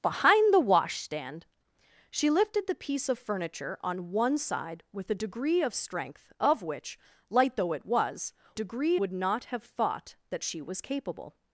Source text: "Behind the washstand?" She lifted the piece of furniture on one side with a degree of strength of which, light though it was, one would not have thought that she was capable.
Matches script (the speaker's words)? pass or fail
fail